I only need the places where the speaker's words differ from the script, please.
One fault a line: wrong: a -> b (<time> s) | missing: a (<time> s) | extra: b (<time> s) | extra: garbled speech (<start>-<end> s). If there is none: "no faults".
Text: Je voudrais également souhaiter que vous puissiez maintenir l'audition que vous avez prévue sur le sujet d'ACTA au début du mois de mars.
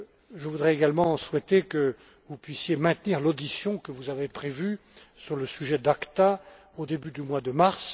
no faults